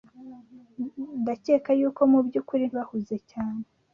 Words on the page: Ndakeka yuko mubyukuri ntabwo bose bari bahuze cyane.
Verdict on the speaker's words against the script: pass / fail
fail